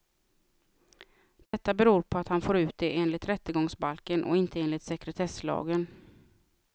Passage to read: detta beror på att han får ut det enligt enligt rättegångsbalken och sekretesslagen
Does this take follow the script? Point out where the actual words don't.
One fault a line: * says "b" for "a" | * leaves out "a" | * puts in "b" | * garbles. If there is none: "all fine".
* leaves out "enligt"
* puts in "inte enligt"